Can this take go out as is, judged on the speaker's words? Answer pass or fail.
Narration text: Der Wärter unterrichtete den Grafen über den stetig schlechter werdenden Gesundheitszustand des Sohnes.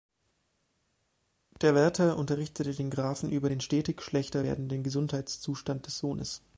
pass